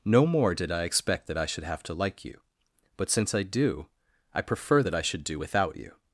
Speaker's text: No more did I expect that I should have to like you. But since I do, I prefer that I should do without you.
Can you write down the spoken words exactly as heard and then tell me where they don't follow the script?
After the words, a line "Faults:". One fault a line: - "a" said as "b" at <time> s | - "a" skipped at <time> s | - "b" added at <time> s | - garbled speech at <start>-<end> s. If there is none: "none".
No more did I expect that I should have to like you. But since I do, I prefer that I should do without you.
Faults:
none